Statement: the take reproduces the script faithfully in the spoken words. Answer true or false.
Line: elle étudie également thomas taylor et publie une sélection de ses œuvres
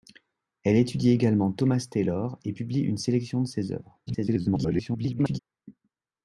false